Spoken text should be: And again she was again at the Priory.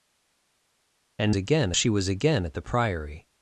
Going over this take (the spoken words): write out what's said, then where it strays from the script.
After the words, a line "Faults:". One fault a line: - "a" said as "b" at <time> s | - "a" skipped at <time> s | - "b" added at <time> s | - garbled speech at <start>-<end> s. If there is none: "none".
And again she was again at the Priory.
Faults:
none